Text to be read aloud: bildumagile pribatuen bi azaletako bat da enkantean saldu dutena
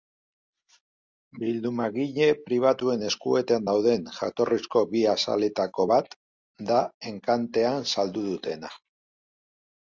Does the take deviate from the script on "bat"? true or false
false